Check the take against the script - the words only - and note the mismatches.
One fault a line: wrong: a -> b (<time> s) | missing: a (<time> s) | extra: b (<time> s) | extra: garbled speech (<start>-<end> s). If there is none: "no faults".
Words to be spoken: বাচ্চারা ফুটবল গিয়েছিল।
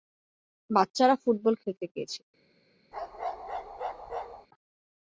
extra: খেলতে (1.6 s)